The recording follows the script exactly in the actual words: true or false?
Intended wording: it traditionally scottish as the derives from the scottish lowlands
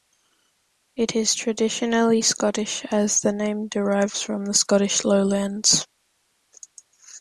false